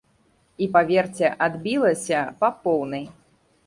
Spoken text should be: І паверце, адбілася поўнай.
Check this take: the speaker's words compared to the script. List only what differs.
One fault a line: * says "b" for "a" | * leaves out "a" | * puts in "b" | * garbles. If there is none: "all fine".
* puts in "па"